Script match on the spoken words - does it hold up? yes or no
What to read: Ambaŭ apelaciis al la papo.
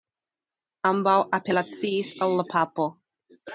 yes